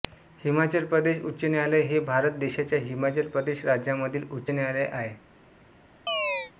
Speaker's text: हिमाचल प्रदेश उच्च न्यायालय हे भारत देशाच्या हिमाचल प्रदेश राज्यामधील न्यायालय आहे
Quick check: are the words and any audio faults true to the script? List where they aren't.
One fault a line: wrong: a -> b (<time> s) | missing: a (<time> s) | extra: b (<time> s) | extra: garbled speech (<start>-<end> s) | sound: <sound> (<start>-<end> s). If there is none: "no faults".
extra: उच्च (4.3 s)
sound: chirp (6.1-6.5 s)